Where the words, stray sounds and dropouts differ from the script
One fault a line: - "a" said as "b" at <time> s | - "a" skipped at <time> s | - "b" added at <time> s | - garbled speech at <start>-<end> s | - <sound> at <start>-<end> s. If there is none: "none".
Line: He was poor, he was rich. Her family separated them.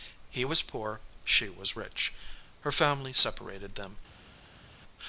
- "he" said as "she" at 1.2 s